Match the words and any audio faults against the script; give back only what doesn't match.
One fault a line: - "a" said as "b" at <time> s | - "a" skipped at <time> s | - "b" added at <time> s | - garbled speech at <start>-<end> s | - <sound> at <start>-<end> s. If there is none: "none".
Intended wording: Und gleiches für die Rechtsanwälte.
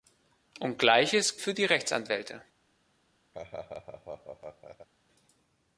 - laugh at 3.3-4.9 s